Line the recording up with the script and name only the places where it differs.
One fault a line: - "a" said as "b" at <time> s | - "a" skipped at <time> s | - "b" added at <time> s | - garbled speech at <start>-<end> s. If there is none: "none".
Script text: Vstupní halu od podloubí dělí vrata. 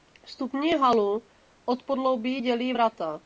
none